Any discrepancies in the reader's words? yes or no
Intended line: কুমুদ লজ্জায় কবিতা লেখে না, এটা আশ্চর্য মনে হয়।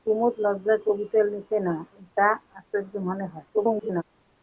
yes